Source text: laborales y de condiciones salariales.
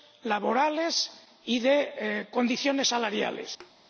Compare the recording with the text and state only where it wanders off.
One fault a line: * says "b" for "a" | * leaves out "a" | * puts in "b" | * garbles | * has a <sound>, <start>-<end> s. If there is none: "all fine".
* has a thud, 3.6-3.7 s